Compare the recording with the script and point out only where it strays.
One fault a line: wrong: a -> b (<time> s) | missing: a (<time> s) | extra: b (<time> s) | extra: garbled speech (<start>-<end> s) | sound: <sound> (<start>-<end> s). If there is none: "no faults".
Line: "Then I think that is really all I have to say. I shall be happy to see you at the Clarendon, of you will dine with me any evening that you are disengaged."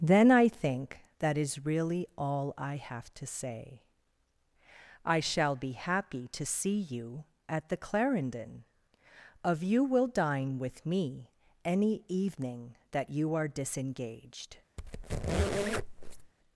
sound: squeak (14.8-16.3 s)